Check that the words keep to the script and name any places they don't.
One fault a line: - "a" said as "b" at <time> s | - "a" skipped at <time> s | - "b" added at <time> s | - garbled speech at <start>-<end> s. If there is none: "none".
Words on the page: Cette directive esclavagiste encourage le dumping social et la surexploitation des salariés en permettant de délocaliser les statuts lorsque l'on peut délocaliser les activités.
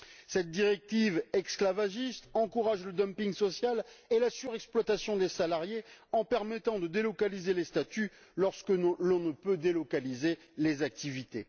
- "ne" added at 9.2 s